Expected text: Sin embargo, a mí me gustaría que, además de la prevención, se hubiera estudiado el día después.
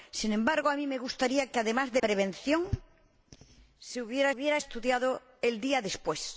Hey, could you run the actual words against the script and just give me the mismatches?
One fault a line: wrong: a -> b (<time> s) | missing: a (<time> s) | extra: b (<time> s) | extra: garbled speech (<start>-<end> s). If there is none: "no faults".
missing: la (2.0 s)
extra: hubiera (4.3 s)